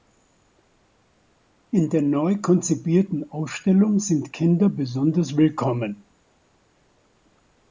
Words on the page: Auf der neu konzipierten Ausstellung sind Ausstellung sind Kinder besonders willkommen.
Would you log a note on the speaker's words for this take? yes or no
yes